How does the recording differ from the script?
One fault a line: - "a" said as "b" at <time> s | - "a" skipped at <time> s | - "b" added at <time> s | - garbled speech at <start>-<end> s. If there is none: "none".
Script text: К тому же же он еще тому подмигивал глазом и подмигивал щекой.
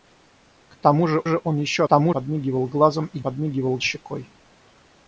none